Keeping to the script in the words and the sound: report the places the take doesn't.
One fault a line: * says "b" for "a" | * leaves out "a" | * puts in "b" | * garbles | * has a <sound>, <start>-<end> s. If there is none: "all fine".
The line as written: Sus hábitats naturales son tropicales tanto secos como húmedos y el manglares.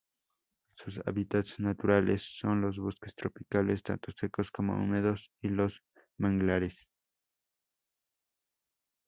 * puts in "los bosques"
* says "los" for "el"